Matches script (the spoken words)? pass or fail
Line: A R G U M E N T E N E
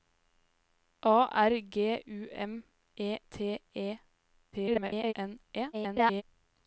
fail